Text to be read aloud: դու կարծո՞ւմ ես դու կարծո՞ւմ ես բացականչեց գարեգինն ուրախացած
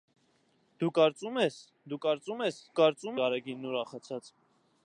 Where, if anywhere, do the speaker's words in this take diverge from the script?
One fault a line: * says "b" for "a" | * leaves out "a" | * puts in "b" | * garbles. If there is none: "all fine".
* says "կարծո՞ւմ" for "բացականչեց"